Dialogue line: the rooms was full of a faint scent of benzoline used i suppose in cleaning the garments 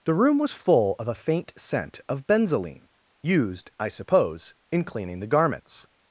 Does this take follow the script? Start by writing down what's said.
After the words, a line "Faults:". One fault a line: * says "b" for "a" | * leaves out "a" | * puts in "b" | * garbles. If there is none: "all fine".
the room was full of a faint scent of benzoline used i suppose in cleaning the garments
Faults:
* says "room" for "rooms"